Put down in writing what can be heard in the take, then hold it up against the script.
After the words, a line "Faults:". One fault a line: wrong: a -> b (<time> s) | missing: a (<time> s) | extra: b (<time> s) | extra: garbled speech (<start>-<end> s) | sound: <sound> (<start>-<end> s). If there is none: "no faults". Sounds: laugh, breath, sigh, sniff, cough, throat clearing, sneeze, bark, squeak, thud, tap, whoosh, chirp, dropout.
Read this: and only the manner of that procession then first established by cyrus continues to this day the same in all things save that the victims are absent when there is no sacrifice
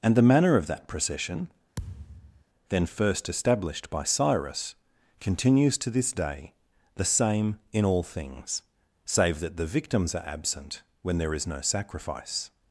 and the manner of that procession then first established by cyrus continues to this day the same in all things save that the victims are absent when there is no sacrifice
Faults:
missing: only (0.1 s)
sound: thud (1.8-2.4 s)